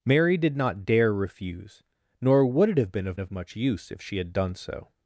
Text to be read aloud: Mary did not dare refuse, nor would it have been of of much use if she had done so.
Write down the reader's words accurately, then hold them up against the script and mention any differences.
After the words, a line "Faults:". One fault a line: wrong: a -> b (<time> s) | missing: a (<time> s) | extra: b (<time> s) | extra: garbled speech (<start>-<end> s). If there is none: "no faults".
Mary did not dare refuse, nor would it have been of of much use if she had done so.
Faults:
no faults